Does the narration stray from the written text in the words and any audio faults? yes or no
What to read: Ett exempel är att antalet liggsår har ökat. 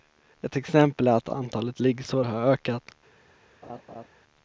yes